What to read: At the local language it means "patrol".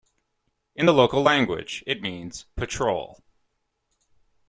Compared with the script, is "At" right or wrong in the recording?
wrong